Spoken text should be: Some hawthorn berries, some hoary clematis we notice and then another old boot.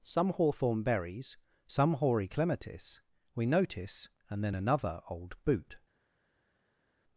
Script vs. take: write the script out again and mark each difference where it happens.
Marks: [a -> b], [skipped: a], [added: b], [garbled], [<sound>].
Some hawthorn berries, some hoary clematis we notice and then another old boot.